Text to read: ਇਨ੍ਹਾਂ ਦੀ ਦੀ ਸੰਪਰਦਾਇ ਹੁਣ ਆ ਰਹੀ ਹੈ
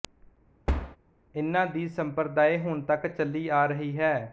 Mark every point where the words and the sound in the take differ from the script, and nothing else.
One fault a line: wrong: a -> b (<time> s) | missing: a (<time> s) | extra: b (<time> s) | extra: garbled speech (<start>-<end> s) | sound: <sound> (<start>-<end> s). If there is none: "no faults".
sound: thud (0.7-1.0 s)
missing: ਦੀ (1.9 s)
extra: ਤੱਕ ਚੱਲੀ (2.8 s)